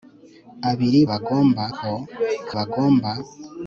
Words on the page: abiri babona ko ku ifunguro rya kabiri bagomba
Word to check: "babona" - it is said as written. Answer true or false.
false